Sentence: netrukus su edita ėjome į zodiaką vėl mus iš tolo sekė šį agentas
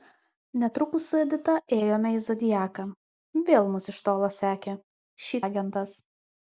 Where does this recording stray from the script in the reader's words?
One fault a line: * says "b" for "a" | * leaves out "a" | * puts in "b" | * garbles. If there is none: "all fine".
all fine